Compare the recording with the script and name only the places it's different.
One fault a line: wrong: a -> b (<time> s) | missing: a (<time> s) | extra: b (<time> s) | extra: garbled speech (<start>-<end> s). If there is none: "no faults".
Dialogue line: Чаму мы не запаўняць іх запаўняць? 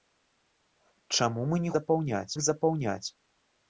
no faults